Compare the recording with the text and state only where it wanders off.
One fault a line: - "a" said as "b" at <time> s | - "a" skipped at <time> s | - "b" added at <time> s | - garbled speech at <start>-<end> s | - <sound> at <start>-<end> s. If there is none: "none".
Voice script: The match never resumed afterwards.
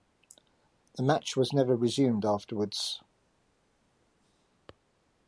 - "was" added at 1.4 s